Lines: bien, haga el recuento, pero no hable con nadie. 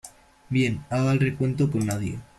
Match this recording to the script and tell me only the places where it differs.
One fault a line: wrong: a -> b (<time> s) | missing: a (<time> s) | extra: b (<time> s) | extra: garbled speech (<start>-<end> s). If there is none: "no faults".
missing: pero no hable (1.7 s)